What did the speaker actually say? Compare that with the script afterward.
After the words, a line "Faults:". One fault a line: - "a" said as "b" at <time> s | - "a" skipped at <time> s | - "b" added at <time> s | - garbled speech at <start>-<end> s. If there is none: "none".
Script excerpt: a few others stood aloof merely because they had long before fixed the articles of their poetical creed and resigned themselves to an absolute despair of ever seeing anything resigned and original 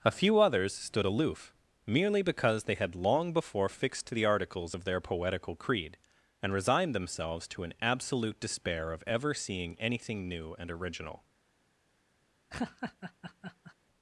a few others stood aloof merely because they had long before fixed the articles of their poetical creed and resigned themselves to an absolute despair of ever seeing anything new and original
Faults:
- "resigned" said as "new" at 10.3 s